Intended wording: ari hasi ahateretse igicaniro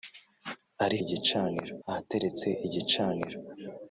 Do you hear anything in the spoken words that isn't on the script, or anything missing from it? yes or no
yes